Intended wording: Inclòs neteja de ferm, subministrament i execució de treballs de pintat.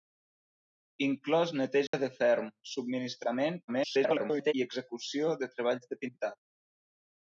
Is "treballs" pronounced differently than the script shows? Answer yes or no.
no